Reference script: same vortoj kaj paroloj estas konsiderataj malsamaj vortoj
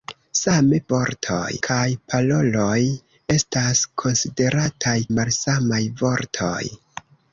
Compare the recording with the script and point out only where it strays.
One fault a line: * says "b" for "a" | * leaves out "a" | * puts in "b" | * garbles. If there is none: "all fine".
all fine